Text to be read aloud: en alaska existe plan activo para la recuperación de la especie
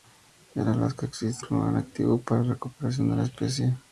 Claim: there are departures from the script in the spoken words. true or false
false